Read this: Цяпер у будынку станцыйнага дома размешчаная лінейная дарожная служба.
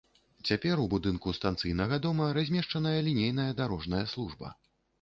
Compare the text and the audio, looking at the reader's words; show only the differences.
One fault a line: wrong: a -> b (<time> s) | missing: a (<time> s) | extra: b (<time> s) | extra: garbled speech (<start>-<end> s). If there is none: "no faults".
no faults